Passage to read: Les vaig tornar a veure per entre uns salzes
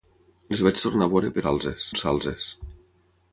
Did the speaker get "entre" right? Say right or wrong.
wrong